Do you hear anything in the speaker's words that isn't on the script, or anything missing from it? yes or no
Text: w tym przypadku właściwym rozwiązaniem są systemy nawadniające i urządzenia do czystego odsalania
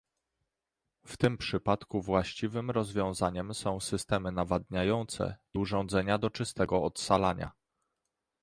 no